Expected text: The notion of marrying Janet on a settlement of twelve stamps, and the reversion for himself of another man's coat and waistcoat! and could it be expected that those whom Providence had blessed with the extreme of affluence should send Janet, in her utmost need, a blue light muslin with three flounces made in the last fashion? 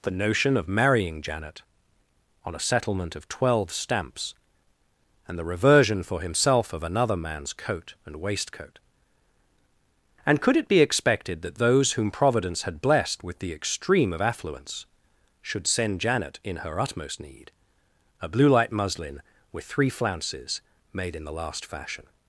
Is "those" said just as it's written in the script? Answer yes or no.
yes